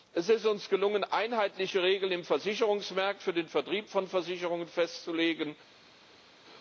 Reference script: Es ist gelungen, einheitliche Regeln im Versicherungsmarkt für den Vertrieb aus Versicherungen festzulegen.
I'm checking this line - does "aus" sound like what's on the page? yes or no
no